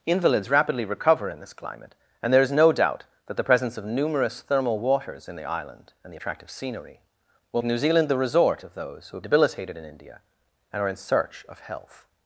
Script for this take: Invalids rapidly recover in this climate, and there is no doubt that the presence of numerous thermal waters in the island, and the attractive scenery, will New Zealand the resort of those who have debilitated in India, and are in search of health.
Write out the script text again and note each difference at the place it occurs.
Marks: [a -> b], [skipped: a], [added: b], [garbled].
Invalids rapidly recover in this climate, and there is no doubt that the presence of numerous thermal waters in the island, and the attractive scenery, will New Zealand the resort of those who have debilitated in India, and are in search of health.